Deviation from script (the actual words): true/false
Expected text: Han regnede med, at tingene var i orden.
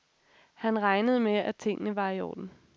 false